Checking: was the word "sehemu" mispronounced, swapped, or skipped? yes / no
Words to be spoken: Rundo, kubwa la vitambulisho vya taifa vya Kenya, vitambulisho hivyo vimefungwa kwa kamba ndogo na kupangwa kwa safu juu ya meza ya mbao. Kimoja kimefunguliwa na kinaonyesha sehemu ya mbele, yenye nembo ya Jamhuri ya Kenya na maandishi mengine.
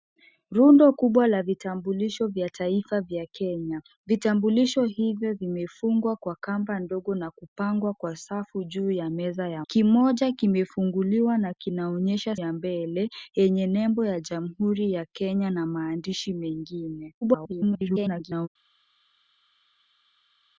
yes